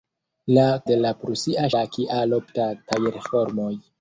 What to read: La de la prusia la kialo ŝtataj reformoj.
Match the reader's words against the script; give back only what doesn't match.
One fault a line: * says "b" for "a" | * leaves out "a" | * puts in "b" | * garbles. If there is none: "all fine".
all fine